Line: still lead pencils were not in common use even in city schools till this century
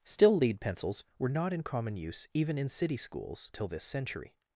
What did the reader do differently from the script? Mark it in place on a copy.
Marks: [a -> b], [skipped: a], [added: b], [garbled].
still lead pencils were not in common use even in city schools till this century